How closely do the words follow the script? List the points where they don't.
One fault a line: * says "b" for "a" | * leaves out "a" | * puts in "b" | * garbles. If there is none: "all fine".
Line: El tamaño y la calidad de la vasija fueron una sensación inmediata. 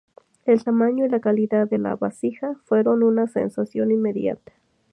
all fine